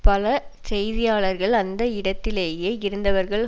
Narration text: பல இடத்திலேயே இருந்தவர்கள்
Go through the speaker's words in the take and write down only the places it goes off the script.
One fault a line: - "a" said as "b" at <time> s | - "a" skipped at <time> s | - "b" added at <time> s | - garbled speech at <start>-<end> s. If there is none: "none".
- "செய்தியாளர்கள் அந்த" added at 0.7 s